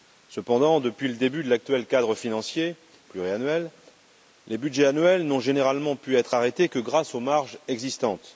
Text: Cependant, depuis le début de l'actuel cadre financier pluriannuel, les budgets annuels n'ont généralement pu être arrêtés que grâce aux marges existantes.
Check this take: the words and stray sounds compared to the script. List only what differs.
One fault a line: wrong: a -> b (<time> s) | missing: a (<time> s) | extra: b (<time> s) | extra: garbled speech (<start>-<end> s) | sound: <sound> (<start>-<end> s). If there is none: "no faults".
no faults